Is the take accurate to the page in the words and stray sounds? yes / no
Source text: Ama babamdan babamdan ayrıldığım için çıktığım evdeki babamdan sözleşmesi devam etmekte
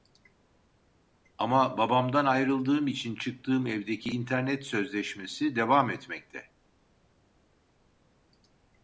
no